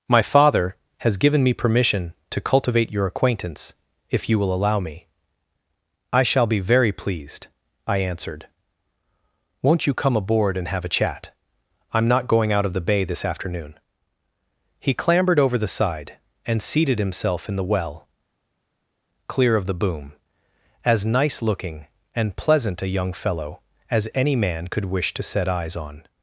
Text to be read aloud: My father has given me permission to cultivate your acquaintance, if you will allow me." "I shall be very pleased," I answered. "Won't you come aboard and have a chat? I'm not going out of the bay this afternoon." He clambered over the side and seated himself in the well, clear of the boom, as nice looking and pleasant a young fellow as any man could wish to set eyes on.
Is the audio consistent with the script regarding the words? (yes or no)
yes